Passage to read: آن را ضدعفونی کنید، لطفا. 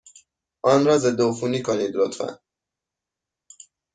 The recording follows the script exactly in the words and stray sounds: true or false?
true